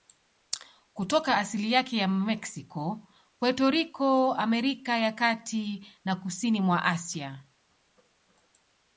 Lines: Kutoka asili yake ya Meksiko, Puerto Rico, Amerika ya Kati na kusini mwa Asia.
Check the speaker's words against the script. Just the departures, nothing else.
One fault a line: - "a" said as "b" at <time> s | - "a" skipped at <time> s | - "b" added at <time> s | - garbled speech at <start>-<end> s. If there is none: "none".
none